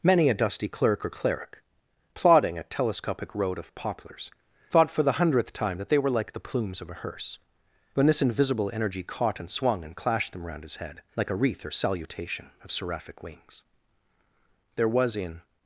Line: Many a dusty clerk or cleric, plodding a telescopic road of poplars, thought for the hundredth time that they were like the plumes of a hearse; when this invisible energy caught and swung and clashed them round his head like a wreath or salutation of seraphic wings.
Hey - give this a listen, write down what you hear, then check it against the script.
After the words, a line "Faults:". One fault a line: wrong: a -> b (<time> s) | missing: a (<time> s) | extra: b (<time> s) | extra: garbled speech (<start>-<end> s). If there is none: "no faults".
Many a dusty clerk or cleric, plodding a telescopic road of poplars, thought for the hundredth time that they were like the plumes of a hearse; when this invisible energy caught and swung and clashed them round his head like a wreath or salutation of seraphic wings. There was in
Faults:
extra: There was in (14.8 s)